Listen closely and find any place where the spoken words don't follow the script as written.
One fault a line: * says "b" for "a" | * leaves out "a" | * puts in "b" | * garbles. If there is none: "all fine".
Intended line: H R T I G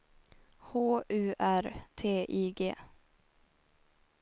* puts in "U"